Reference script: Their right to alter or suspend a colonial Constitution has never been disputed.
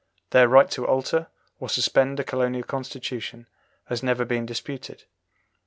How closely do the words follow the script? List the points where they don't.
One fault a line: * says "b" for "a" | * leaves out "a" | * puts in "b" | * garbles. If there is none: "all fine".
all fine